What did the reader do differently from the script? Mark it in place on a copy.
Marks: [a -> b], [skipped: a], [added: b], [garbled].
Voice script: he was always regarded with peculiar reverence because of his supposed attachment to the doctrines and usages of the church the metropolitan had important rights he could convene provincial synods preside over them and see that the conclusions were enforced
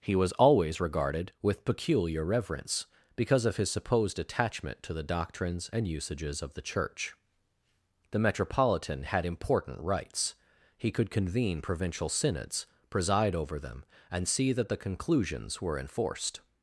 he was always regarded with peculiar reverence because of his supposed attachment to the doctrines and usages of the church the metropolitan had important rights he could convene provincial synods preside over them and see that the conclusions were enforced